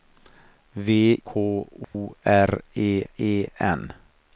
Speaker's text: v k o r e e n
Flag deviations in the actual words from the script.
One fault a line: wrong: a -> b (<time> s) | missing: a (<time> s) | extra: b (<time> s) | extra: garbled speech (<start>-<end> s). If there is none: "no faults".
no faults